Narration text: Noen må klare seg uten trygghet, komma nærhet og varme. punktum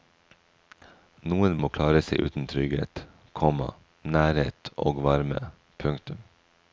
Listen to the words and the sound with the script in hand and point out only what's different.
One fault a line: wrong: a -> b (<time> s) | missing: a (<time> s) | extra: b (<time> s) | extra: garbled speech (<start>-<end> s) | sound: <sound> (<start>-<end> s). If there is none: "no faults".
no faults